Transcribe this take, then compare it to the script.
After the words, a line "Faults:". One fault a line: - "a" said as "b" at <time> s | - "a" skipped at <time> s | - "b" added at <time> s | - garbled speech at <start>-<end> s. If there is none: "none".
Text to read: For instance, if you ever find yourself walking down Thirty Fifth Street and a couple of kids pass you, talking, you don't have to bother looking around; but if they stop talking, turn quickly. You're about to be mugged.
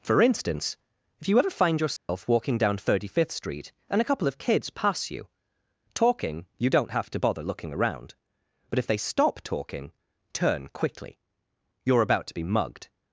For instance, if you ever find yourself walking down Thirty Fifth Street and a couple of kids pass you, talking, you don't have to bother looking around; but if they stop talking, turn quickly. You're about to be mugged.
Faults:
none